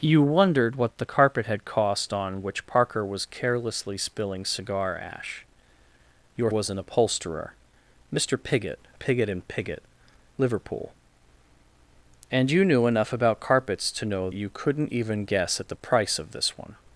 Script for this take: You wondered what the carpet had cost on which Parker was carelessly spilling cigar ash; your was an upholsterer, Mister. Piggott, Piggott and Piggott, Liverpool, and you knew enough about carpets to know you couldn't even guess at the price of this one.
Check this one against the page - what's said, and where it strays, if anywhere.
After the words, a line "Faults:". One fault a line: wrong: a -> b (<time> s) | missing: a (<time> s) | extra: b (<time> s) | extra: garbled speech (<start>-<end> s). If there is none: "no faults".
You wondered what the carpet had cost on which Parker was carelessly spilling cigar ash; your was an upholsterer, Mister. Piggott, Piggott and Piggott, Liverpool, and you knew enough about carpets to know you couldn't even guess at the price of this one.
Faults:
no faults